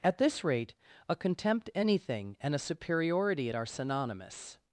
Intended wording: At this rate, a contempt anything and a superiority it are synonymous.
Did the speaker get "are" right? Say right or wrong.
right